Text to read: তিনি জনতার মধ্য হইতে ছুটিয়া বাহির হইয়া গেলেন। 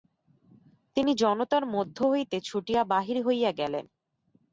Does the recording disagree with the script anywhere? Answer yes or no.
no